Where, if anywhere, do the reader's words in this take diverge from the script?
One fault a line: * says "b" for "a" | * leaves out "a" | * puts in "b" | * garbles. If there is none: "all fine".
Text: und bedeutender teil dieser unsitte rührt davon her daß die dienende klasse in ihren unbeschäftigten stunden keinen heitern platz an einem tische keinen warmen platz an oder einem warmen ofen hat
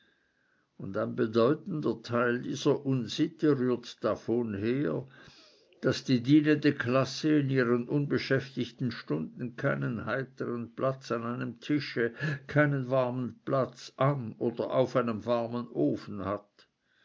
* puts in "ein"
* puts in "auf"